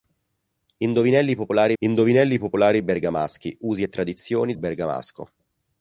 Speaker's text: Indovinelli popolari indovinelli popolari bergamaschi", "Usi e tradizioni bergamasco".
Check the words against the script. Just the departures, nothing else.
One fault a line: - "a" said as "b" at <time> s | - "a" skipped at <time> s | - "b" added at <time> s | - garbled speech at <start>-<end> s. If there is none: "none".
none